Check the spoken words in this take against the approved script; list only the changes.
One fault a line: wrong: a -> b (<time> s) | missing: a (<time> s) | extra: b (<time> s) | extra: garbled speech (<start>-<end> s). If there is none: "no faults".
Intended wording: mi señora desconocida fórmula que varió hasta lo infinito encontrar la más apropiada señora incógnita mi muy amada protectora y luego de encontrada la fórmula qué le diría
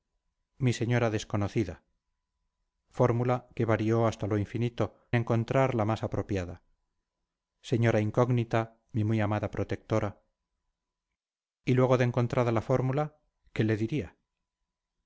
no faults